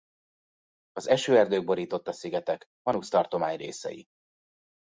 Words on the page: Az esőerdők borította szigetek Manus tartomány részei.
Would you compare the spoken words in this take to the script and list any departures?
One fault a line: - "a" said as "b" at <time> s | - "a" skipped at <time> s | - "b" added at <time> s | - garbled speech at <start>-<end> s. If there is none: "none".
none